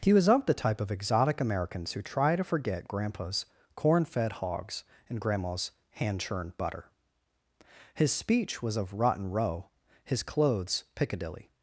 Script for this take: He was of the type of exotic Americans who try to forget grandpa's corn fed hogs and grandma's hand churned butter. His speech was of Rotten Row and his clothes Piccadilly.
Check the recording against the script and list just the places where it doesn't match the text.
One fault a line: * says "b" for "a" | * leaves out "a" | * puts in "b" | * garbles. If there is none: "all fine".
* leaves out "and"